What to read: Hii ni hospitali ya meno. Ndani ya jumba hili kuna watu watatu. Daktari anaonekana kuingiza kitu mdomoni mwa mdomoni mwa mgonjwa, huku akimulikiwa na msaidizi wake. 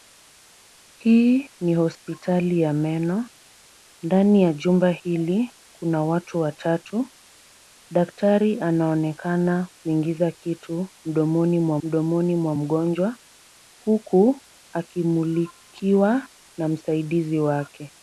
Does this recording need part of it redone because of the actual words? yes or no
no